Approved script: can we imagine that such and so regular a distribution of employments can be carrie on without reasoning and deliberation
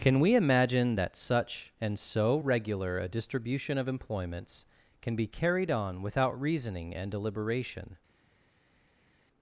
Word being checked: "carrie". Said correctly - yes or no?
no